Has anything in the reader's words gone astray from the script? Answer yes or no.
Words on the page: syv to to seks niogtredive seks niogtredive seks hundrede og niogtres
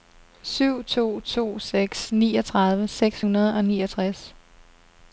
yes